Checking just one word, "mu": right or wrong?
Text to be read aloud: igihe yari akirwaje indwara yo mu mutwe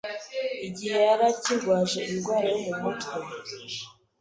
right